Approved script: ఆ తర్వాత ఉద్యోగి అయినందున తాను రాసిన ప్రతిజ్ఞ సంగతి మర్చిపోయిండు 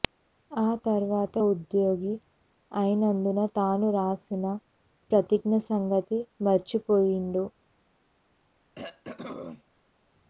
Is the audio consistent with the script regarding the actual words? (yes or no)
yes